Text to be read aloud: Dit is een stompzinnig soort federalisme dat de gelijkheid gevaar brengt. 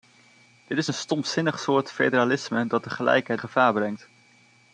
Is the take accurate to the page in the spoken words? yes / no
yes